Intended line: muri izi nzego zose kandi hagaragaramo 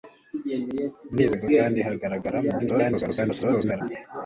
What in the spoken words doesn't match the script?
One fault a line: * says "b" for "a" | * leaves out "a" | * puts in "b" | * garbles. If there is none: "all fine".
* leaves out "zose"
* garbles